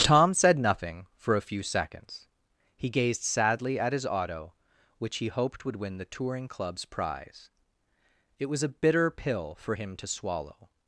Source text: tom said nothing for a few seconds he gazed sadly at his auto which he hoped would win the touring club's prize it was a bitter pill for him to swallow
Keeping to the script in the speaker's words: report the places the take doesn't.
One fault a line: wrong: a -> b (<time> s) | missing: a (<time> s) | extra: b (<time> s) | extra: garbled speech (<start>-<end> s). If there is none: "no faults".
no faults